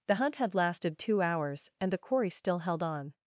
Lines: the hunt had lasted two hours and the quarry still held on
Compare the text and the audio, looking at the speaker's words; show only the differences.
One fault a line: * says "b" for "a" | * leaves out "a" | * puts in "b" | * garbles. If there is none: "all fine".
all fine